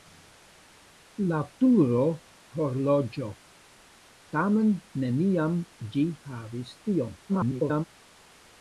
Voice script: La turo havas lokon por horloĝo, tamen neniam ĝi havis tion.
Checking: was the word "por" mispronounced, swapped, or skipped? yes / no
yes